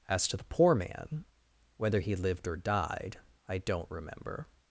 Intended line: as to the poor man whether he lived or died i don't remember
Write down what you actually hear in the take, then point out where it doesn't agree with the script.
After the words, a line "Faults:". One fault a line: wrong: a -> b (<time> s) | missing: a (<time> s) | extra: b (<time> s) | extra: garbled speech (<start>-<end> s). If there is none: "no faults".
as to the poor man whether he lived or died i don't remember
Faults:
no faults